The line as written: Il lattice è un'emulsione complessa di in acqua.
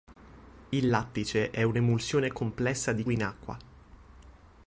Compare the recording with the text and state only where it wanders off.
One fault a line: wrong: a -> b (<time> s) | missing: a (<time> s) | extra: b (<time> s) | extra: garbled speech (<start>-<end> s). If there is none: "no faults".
no faults